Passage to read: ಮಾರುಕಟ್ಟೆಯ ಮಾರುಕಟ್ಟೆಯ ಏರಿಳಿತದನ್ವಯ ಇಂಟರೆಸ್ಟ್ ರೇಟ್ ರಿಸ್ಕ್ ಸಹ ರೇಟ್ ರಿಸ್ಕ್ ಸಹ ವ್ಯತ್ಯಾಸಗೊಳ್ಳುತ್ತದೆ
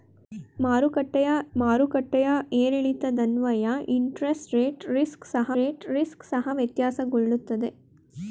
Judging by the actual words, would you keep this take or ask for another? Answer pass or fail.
pass